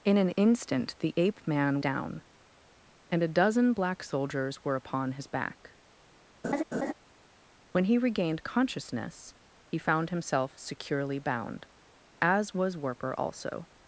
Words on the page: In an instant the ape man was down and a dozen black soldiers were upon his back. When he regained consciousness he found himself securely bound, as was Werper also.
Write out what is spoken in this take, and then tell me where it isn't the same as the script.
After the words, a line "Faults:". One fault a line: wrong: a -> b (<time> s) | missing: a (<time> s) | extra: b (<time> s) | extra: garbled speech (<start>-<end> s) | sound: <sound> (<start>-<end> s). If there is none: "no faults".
In an instant the ape man down and a dozen black soldiers were upon his back. When he regained consciousness he found himself securely bound, as was Werper also.
Faults:
missing: was (1.8 s)
sound: laugh (6.4-6.9 s)